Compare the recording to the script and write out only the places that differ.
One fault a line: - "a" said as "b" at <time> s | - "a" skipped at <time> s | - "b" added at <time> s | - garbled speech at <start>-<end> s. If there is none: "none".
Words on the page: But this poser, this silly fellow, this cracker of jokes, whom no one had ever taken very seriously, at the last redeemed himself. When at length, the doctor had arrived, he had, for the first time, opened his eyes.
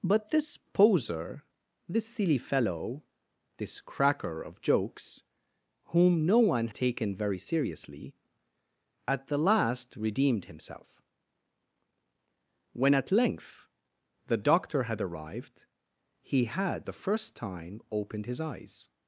- "had ever" skipped at 6.7 s
- "for" skipped at 16.9 s